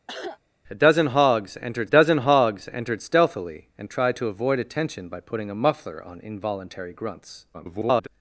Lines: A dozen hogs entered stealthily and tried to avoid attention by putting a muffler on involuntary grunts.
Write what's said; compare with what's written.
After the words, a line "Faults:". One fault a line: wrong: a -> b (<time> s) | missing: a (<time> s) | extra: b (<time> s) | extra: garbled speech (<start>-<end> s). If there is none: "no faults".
A dozen hogs entered dozen hogs entered stealthily and tried to avoid attention by putting a muffler on involuntary grunts. [garbled]
Faults:
extra: dozen hogs entered (1.9 s)
extra: garbled speech (7.5-8.1 s)